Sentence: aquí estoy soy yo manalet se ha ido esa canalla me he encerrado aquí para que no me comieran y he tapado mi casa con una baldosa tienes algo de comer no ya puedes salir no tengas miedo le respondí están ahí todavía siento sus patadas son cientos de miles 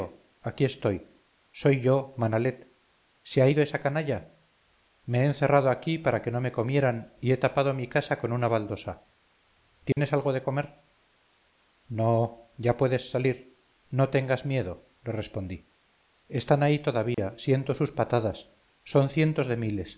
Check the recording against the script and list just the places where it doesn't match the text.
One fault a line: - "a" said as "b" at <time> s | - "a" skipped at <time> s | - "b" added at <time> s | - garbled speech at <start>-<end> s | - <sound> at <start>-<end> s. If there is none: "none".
- dropout at 9.9-10.0 s
- dropout at 17.1-17.2 s